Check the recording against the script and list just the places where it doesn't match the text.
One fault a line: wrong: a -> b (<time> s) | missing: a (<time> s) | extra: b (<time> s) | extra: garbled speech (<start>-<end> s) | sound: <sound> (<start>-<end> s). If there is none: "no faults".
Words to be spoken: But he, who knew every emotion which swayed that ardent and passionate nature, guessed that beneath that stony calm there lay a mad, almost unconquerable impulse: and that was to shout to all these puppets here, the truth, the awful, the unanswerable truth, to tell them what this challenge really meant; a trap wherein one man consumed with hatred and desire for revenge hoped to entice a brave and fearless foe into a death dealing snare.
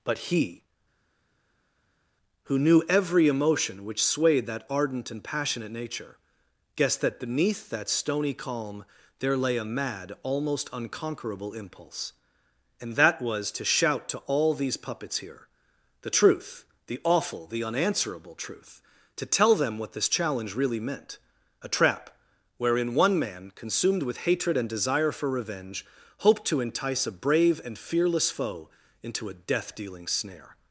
no faults